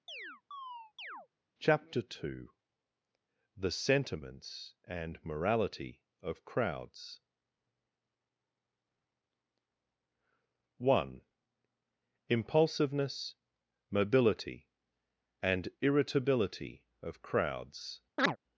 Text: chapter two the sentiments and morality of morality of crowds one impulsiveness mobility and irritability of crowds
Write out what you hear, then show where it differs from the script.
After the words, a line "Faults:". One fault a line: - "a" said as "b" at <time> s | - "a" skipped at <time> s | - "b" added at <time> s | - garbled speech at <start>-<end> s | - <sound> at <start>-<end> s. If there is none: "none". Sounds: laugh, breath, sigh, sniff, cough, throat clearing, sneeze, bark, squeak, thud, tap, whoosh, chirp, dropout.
chapter two the sentiments and morality of crowds one impulsiveness mobility and irritability of crowds
Faults:
- chirp at 0.1-1.3 s
- "morality of" skipped at 6.4 s
- chirp at 18.2-18.4 s